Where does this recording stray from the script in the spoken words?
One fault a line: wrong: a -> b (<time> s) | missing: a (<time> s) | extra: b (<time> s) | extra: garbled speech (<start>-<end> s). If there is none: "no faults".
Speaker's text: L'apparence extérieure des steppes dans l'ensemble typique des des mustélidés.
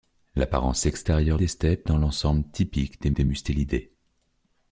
no faults